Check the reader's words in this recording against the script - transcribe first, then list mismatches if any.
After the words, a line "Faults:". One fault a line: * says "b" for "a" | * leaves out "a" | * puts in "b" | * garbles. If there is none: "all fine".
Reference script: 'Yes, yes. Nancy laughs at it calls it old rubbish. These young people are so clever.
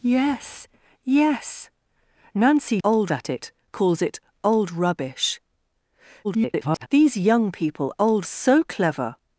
'Yes, yes. Nancy old at it calls it old rubbish. [garbled] These young people old so clever.
Faults:
* says "old" for "laughs"
* garbles
* says "old" for "are"